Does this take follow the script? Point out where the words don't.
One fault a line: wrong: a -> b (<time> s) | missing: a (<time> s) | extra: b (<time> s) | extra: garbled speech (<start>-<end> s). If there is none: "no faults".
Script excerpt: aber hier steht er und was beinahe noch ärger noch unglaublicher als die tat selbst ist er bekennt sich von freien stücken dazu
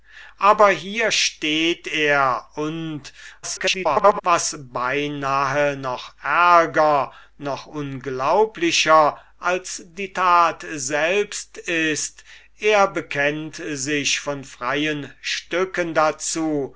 extra: garbled speech (3.4-4.2 s)